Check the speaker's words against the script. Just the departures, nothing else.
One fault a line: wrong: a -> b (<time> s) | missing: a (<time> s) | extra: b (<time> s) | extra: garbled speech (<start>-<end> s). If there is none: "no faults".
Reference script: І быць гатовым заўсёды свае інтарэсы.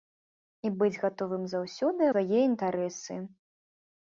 no faults